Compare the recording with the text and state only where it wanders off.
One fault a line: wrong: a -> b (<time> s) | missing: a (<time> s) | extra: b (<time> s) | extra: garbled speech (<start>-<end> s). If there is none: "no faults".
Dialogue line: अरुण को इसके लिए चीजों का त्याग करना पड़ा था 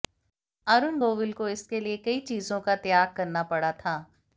extra: गोविल (1.0 s)
extra: कई (2.0 s)